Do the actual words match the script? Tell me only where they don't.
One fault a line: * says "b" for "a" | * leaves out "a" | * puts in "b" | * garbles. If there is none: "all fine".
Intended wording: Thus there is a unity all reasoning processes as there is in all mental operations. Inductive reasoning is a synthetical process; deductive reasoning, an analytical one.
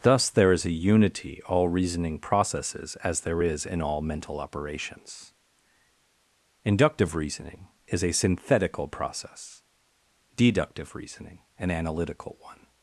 all fine